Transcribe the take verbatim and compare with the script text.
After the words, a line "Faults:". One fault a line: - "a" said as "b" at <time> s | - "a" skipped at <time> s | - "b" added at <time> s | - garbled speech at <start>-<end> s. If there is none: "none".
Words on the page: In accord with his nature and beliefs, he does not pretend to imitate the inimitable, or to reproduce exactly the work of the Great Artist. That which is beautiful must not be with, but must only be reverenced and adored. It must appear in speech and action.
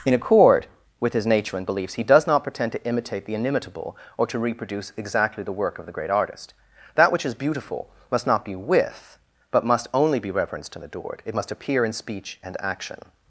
In accord with his nature and beliefs, he does not pretend to imitate the inimitable, or to reproduce exactly the work of the Great Artist. That which is beautiful must not be with, but must only be reverenced and adored. It must appear in speech and action.
Faults:
none